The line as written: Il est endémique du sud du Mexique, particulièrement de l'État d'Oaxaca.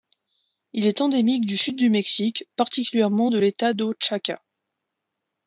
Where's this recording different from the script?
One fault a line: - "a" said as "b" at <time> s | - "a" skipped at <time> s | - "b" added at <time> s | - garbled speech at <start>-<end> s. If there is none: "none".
none